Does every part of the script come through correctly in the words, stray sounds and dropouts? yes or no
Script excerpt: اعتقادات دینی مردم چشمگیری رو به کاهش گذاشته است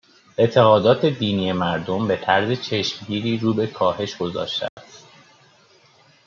no